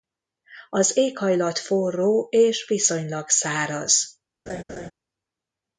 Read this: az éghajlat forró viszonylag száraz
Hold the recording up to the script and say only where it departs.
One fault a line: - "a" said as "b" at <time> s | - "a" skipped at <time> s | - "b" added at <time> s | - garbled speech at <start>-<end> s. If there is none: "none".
- "és" added at 2.3 s